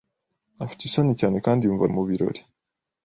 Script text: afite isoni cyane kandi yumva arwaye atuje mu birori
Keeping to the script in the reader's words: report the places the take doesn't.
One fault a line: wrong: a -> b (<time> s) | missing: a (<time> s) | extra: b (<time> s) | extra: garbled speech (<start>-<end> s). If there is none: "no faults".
missing: arwaye atuje (1.8 s)